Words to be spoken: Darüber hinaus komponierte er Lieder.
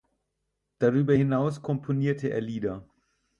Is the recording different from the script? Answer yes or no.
no